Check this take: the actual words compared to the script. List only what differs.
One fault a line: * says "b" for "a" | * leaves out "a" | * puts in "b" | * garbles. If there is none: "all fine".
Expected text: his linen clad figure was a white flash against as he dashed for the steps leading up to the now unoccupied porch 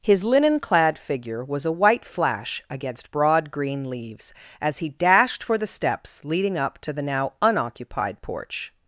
* puts in "broad green leaves"